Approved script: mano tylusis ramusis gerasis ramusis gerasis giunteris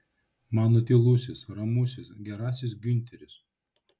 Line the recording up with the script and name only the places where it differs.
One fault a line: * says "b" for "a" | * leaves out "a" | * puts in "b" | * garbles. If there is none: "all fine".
* leaves out "ramusis gerasis"